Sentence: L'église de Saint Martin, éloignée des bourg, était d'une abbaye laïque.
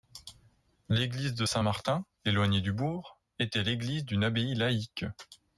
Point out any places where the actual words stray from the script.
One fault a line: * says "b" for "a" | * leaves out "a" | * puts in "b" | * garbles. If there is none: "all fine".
* says "du" for "des"
* puts in "l'église"